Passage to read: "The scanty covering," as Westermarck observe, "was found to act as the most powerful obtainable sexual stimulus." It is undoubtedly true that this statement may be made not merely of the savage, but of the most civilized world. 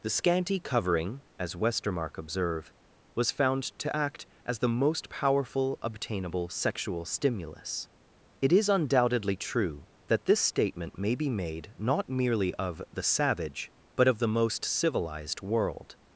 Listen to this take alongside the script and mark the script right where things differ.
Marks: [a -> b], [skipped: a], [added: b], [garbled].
"The scanty covering," as Westermarck observe, "was found to act as the most powerful obtainable sexual stimulus." It is undoubtedly true that this statement may be made not merely of the savage, but of the most civilized world.